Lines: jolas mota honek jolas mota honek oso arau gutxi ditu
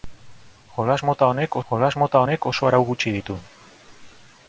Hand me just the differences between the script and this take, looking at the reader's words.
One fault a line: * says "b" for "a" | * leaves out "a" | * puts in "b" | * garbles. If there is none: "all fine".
all fine